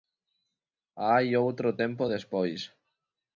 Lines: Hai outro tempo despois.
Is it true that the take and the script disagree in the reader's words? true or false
false